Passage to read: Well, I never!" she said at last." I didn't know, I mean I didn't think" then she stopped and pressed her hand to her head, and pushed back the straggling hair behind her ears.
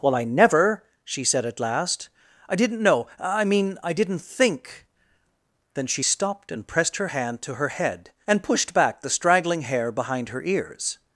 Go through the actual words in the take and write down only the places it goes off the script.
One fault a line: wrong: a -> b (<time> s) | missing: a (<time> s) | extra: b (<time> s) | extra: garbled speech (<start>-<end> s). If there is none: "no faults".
no faults